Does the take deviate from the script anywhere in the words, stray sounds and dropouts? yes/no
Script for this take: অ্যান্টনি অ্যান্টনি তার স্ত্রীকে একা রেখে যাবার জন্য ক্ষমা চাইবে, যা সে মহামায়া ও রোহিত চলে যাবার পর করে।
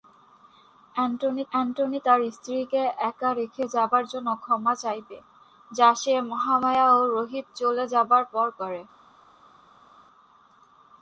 no